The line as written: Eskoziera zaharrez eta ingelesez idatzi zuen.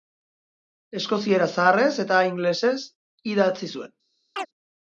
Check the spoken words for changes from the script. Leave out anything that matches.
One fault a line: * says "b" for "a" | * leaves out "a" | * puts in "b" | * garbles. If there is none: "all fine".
all fine